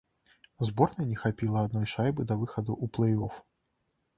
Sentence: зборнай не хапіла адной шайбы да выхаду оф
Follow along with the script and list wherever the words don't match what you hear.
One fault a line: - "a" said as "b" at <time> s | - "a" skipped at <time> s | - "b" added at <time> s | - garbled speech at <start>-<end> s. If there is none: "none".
- "ў плэй" added at 2.8 s